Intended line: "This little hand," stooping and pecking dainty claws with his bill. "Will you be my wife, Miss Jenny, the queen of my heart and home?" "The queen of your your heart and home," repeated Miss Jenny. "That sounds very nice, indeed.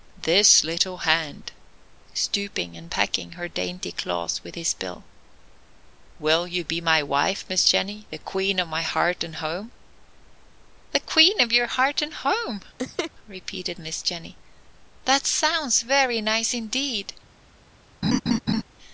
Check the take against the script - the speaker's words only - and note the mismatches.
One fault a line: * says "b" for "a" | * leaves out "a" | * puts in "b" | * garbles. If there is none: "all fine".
* puts in "her"
* leaves out "your"